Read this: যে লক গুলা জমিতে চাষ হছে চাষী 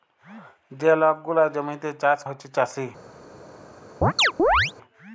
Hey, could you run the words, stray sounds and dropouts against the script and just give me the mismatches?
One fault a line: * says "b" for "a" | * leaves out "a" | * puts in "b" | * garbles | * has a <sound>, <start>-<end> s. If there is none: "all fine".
* has a chirp, 4.0-4.7 s